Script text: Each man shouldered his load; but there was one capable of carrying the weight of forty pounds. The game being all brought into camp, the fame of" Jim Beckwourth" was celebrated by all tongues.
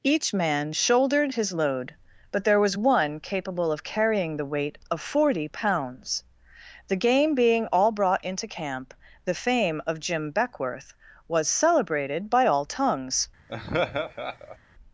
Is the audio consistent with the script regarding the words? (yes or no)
yes